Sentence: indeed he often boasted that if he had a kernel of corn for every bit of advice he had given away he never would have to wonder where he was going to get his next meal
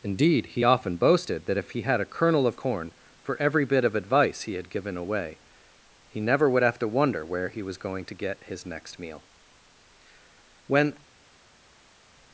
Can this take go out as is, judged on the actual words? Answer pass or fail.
fail